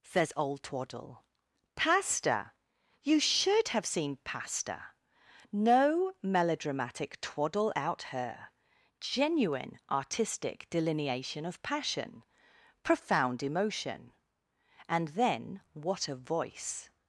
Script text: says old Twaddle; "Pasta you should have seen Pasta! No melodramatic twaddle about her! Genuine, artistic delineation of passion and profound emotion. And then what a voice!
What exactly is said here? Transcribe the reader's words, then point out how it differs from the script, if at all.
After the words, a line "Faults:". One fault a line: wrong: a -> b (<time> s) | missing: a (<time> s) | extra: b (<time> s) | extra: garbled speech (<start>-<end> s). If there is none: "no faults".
says old Twaddle; "Pasta you should have seen Pasta! No melodramatic twaddle out her! Genuine, artistic delineation of passion profound emotion. And then what a voice!
Faults:
wrong: about -> out (7.8 s)
missing: and (12.2 s)